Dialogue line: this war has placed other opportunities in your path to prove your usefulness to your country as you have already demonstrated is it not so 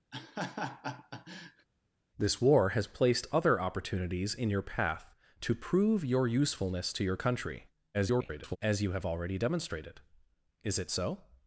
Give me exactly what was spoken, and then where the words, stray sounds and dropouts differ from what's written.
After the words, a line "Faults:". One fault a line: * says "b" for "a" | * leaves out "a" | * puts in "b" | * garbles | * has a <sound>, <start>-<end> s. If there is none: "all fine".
this war has placed other opportunities in your path to prove your usefulness to your country [garbled] as you have already demonstrated is it so
Faults:
* has a laugh, 0.1-1.7 s
* garbles
* leaves out "not"